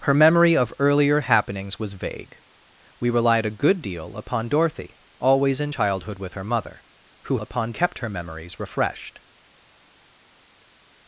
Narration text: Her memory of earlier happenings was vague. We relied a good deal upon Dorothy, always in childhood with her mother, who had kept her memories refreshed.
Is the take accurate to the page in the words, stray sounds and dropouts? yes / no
no